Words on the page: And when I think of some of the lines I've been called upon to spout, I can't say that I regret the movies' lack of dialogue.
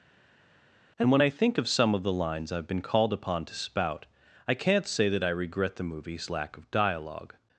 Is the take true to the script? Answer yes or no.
yes